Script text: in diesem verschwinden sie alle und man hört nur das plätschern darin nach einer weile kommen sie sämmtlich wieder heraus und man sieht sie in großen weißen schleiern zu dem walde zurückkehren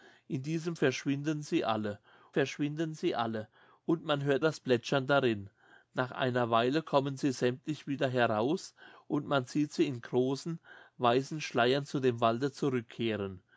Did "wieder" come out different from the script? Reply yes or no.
no